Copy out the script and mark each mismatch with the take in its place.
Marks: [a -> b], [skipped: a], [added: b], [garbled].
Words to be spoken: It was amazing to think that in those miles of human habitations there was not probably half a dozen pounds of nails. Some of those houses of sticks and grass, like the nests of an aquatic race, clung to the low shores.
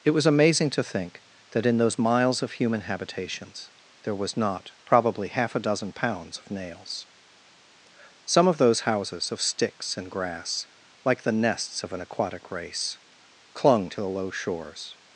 It was amazing to think that in those miles of human habitations there was not probably half a dozen pounds of nails. Some of those houses of sticks and grass, like the nests of an aquatic race, clung to the low shores.